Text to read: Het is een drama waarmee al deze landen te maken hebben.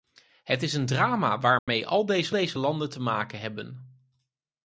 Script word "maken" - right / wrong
right